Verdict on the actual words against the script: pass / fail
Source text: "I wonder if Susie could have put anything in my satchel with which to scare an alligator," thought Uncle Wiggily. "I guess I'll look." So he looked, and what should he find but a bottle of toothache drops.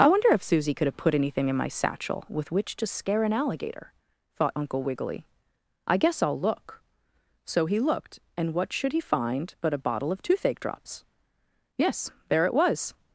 fail